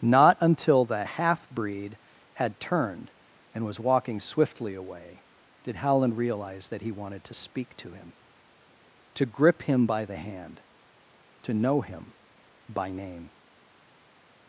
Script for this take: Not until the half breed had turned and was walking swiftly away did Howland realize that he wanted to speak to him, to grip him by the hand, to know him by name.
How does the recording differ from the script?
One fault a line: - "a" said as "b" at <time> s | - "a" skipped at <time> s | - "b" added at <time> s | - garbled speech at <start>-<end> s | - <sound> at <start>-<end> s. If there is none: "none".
none